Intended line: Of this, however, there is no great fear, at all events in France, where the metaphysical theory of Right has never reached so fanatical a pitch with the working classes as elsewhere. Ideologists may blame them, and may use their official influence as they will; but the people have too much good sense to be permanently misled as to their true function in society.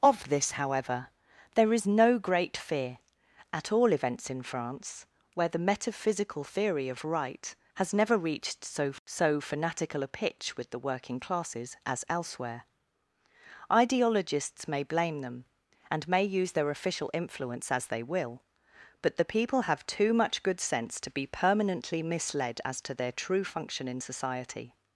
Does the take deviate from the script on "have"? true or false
false